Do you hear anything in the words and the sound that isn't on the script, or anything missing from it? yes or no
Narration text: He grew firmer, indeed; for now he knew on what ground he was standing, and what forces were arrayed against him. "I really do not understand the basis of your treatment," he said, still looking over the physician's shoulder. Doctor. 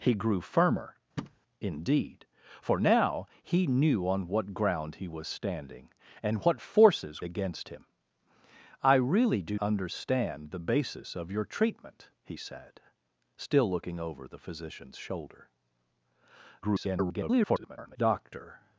yes